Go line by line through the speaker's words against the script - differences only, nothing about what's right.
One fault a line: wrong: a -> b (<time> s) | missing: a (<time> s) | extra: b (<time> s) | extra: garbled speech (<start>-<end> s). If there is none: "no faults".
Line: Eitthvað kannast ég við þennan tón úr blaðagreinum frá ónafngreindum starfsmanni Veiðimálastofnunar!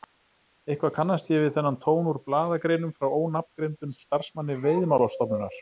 no faults